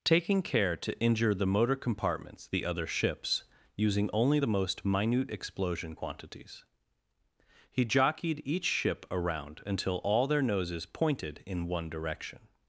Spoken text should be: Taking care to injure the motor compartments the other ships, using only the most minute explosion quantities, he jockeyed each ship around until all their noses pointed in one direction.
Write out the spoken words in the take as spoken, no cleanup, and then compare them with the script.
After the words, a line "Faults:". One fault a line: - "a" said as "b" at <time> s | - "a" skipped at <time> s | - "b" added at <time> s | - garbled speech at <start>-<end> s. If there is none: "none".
Taking care to injure the motor compartments the other ships, using only the most minute explosion quantities, he jockeyed each ship around until all their noses pointed in one direction.
Faults:
none